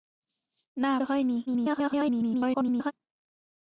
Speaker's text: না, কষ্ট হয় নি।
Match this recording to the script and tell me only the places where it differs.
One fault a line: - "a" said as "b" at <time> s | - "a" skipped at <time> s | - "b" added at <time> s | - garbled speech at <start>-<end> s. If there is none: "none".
- "কষ্ট" skipped at 0.9 s
- garbled speech at 1.5-2.9 s